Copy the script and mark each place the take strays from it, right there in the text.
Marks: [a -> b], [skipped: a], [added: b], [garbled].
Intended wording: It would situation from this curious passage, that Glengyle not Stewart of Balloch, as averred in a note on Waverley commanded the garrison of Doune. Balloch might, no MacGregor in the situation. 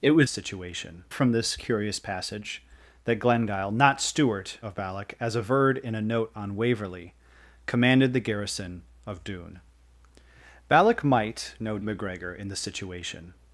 It would situation from this curious passage, that Glengyle not Stewart of Balloch, as averred in a note on Waverley commanded the garrison of Doune. Balloch might, no MacGregor in the situation.